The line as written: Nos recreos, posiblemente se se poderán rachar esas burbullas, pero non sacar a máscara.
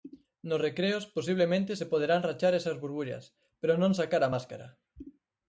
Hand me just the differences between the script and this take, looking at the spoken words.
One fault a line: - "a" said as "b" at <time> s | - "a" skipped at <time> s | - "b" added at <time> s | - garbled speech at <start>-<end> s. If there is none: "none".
- "se" skipped at 1.9 s